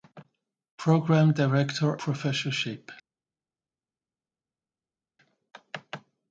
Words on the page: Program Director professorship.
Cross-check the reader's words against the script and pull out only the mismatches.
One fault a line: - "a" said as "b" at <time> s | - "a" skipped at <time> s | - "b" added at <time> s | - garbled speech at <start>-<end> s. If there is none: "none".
none